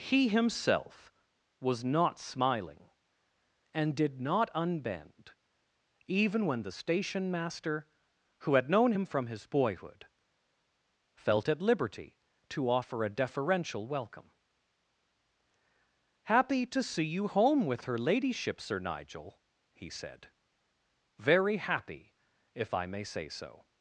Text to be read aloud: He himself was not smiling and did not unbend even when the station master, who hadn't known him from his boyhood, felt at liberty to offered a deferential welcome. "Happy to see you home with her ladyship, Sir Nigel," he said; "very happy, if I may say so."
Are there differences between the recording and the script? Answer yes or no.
yes